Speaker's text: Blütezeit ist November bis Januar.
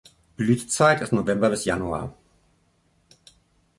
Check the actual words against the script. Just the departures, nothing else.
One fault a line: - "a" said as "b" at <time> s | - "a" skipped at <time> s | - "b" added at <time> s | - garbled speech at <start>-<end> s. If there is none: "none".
none